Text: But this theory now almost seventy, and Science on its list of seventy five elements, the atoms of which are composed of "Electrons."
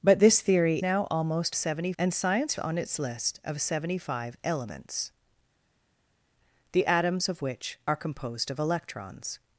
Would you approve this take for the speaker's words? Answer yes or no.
yes